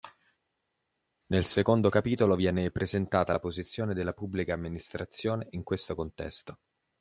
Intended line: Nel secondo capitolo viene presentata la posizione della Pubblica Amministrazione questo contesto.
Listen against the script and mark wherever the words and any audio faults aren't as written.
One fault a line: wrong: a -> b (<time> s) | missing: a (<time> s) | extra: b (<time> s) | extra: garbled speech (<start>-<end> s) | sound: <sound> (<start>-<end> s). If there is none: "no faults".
extra: in (5.5 s)